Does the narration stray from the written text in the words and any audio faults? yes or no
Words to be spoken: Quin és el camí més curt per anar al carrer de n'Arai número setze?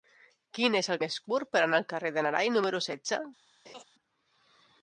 yes